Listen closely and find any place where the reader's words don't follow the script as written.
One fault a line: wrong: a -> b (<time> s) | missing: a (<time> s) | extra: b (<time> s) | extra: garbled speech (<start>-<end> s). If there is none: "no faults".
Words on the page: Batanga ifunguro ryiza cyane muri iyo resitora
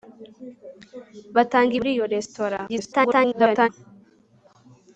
missing: ifunguro ryiza cyane (1.7 s)
extra: garbled speech (2.7-3.7 s)